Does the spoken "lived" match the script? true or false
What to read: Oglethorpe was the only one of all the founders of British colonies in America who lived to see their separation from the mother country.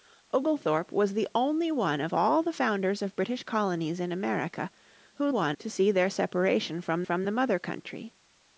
false